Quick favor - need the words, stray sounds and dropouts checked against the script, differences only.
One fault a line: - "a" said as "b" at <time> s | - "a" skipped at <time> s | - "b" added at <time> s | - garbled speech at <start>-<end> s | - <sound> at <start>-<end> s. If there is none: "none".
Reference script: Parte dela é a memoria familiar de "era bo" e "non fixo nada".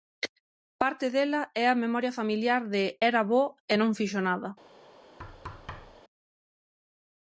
- thud at 5.2-6.0 s